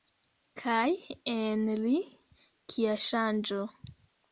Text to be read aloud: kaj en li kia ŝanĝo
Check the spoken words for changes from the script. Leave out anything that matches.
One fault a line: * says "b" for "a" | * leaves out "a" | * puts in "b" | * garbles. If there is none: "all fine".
all fine